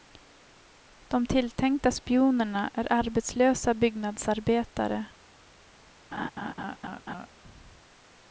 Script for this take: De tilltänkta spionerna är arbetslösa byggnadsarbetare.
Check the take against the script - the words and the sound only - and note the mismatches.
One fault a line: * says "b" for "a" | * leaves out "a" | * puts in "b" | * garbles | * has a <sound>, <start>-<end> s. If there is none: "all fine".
* has a laugh, 6.1-7.3 s